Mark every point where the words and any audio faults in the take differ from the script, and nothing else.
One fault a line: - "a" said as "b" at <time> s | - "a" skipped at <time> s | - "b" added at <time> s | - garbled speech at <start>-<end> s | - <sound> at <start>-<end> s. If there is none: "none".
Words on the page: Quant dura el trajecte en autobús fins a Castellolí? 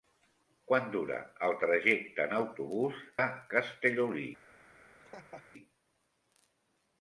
- "fins" skipped at 3.0 s
- laugh at 5.0-5.5 s